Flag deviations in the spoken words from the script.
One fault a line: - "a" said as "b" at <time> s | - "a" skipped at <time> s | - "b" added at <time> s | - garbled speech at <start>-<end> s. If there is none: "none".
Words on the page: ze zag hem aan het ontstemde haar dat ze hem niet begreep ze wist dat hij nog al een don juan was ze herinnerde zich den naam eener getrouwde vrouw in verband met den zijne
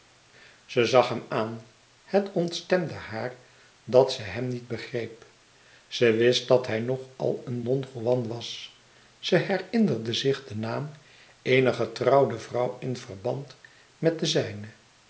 none